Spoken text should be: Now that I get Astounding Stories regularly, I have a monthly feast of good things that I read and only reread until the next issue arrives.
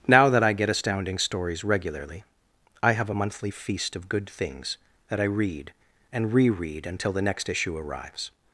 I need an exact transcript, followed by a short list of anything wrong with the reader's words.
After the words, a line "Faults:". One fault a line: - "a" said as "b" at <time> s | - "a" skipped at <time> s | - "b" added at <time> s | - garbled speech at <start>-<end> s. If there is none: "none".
Now that I get Astounding Stories regularly, I have a monthly feast of good things that I read and reread until the next issue arrives.
Faults:
- "only" skipped at 6.3 s